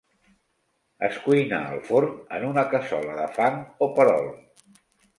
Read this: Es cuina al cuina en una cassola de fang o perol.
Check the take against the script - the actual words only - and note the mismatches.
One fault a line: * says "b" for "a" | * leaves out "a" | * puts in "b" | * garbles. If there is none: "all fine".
* says "forn" for "cuina"